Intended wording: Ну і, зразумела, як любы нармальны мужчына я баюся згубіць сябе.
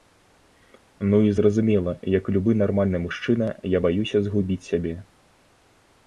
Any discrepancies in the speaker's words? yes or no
no